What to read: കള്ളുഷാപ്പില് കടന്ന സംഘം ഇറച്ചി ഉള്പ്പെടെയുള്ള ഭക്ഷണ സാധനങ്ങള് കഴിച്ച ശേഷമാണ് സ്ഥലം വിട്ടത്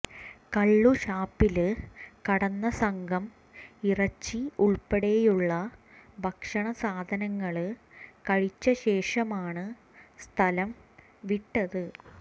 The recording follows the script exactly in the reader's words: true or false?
true